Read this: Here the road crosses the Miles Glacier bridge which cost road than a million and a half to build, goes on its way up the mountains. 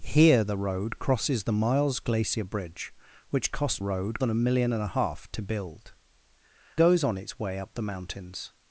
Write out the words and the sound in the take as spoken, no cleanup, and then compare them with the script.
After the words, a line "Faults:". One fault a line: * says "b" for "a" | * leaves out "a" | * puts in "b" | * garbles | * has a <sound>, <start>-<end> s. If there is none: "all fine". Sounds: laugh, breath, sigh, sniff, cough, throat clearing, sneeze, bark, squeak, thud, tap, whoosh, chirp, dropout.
Here the road crosses the Miles Glacier bridge which cost road than a million and a half to build, goes on its way up the mountains.
Faults:
all fine